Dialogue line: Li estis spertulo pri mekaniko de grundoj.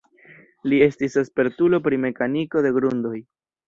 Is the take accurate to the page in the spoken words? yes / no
yes